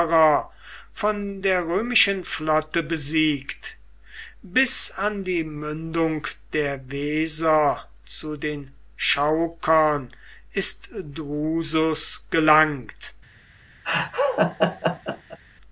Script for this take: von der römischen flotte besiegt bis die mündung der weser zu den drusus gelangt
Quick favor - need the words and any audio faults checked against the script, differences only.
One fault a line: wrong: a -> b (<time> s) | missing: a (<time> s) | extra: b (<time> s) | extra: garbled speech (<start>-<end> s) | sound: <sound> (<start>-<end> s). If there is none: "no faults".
extra: an (4.9 s)
extra: chaukern ist (8.9 s)
sound: laugh (13.8-15.4 s)